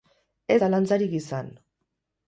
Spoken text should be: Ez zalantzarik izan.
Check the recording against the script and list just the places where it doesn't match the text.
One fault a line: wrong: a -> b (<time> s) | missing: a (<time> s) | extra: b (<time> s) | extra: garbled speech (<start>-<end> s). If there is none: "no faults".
no faults